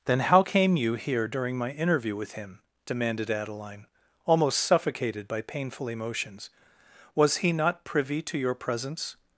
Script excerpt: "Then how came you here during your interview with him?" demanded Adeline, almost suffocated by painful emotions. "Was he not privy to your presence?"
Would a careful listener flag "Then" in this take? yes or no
no